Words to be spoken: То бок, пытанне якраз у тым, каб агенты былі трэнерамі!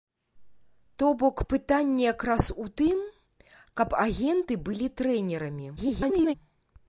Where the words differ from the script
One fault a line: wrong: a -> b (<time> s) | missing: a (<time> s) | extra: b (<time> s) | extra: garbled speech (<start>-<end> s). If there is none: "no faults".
extra: garbled speech (5.8-6.3 s)